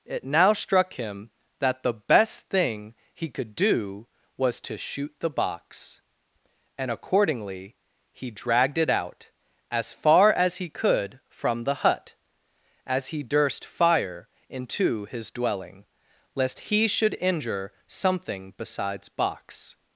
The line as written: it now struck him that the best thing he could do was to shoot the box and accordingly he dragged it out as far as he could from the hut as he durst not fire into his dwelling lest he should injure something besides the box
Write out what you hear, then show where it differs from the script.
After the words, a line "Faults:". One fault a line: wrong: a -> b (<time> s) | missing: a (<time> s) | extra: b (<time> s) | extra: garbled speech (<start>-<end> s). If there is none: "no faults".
it now struck him that the best thing he could do was to shoot the box and accordingly he dragged it out as far as he could from the hut as he durst fire into his dwelling lest he should injure something besides box
Faults:
missing: not (13.6 s)
missing: the (19.1 s)